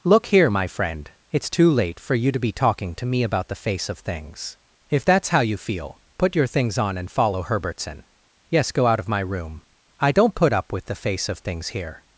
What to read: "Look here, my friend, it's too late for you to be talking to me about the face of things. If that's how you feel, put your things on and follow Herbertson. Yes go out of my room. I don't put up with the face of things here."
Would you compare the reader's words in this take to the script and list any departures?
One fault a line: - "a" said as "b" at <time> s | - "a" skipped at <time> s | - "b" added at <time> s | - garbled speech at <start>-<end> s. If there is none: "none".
none